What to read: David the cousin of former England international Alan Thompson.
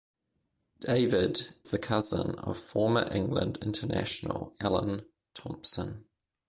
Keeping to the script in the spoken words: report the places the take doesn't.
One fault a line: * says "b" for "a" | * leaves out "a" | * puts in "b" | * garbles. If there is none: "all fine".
all fine